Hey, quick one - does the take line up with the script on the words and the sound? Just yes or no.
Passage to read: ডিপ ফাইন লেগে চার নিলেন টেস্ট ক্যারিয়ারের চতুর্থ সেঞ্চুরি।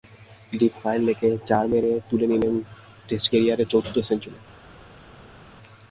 no